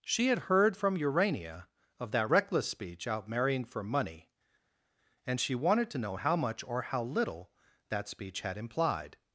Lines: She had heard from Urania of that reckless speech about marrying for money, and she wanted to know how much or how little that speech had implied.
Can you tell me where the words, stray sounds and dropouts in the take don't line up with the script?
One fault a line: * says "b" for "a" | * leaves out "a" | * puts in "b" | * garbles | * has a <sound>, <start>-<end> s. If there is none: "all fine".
* says "out" for "about"